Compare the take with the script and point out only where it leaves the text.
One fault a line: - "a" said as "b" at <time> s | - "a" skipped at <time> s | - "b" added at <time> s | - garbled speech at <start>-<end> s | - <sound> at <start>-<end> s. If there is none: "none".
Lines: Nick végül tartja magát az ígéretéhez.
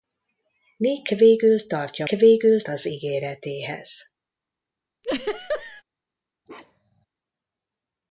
- "magát" said as "végül" at 2.1 s
- laugh at 5.0-5.8 s
- bark at 6.5-7.1 s